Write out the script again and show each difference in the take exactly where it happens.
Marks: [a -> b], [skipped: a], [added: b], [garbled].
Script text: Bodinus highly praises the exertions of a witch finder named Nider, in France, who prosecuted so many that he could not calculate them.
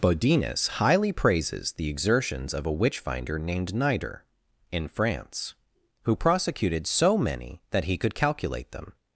Bodinus highly praises the exertions of a witch finder named Nider, in France, who prosecuted so many that he could [skipped: not] calculate them.